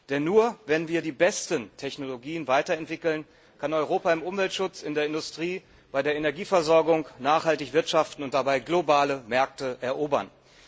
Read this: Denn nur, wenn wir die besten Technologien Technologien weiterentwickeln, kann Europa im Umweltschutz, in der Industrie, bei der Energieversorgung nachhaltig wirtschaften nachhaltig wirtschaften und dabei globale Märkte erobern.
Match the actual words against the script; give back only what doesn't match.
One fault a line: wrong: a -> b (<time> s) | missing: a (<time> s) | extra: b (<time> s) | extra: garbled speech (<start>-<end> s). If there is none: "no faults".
missing: Technologien (2.5 s)
missing: nachhaltig wirtschaften (8.2 s)